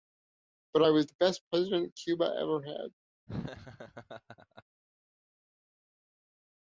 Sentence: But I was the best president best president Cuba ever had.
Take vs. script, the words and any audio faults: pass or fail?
fail